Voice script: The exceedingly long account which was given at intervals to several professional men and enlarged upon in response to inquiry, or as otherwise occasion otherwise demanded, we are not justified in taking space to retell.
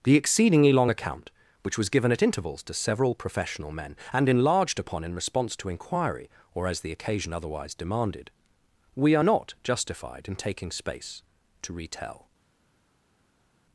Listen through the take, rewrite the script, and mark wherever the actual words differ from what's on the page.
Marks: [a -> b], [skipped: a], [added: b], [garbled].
The exceedingly long account which was given at intervals to several professional men and enlarged upon in response to inquiry, or as [otherwise -> the] occasion otherwise demanded, we are not justified in taking space to retell.